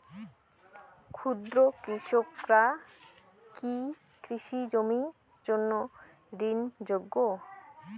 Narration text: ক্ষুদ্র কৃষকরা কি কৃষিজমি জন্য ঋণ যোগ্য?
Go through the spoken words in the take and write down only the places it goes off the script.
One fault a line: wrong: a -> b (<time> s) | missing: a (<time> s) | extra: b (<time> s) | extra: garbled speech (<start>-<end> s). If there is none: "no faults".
no faults